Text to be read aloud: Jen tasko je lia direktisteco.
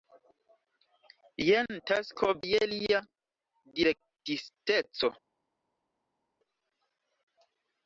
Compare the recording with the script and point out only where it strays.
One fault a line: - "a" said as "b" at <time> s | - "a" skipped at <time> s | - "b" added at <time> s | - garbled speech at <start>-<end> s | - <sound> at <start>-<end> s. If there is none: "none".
none